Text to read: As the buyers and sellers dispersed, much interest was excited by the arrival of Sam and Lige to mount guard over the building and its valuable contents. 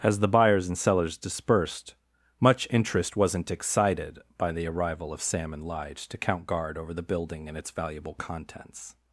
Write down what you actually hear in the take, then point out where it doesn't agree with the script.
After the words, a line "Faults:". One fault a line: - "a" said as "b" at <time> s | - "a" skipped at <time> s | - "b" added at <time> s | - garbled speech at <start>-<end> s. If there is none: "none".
As the buyers and sellers dispersed, much interest wasn't excited by the arrival of Sam and Lige to count guard over the building and its valuable contents.
Faults:
- "was" said as "wasn't" at 3.1 s
- "mount" said as "count" at 6.2 s